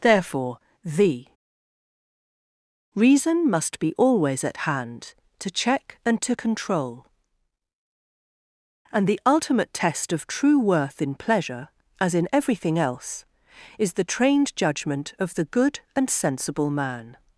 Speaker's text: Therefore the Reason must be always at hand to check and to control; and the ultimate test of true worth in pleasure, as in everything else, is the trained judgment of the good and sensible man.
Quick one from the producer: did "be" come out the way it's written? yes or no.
yes